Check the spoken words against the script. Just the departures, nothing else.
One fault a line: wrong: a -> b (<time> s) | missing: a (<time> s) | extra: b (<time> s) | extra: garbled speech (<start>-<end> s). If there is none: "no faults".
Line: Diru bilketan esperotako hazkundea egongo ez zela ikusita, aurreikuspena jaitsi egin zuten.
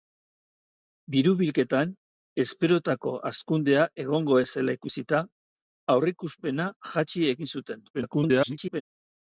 extra: garbled speech (7.9-8.8 s)